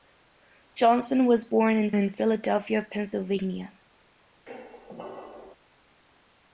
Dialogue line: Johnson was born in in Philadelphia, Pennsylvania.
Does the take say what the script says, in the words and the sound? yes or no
no